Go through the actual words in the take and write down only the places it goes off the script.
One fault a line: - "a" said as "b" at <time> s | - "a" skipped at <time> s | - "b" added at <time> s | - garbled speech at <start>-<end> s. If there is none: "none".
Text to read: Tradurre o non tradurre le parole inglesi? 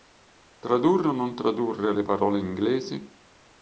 none